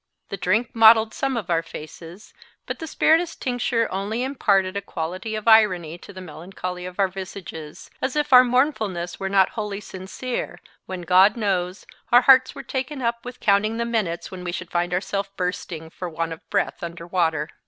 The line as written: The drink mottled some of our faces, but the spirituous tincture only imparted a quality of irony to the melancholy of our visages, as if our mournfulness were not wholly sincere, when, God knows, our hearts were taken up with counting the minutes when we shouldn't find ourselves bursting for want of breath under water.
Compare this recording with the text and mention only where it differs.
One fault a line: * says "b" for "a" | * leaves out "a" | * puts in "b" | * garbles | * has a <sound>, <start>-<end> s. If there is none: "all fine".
* says "should" for "shouldn't"